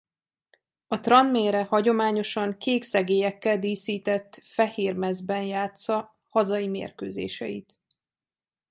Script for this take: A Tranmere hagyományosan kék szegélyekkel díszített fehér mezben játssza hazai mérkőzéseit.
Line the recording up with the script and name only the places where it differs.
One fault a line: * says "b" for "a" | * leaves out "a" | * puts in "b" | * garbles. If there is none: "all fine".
all fine